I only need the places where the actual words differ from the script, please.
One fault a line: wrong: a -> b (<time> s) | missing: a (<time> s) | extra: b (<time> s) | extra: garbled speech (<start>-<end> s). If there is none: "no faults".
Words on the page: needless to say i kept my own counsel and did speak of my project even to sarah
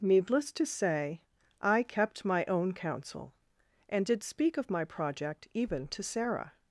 no faults